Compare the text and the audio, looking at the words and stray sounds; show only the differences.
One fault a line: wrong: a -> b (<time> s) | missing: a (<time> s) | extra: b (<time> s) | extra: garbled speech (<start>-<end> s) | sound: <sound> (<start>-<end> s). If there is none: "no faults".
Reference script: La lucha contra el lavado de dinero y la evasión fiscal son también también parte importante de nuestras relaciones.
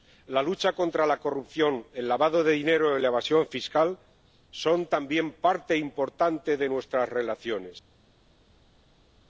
extra: la corrupción (1.1 s)
missing: también (5.3 s)